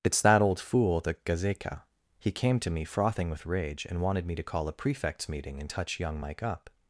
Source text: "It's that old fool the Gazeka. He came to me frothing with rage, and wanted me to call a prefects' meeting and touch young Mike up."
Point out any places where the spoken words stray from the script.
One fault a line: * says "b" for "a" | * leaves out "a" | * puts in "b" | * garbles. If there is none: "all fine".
all fine